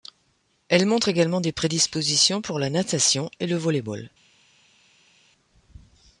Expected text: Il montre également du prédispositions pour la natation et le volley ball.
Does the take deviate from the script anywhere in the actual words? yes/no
yes